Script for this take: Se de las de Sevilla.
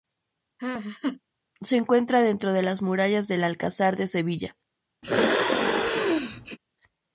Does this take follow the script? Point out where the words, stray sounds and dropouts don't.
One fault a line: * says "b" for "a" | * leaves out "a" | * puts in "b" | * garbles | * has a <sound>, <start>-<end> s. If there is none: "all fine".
* has a laugh, 0.6-1.2 s
* puts in "encuentra dentro"
* puts in "murallas del Alcázar"
* has a sneeze, 5.0-6.6 s